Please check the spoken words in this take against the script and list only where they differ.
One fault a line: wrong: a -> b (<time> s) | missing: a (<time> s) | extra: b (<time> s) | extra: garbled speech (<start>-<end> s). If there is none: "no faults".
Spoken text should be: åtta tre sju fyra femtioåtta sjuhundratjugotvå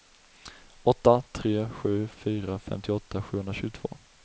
no faults